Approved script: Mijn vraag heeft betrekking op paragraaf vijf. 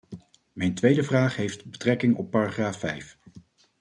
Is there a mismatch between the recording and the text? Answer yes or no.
yes